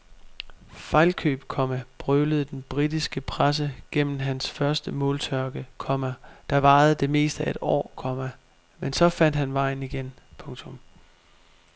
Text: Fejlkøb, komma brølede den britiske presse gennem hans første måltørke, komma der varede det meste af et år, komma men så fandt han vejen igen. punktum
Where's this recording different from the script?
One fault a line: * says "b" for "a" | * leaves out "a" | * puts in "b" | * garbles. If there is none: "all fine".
all fine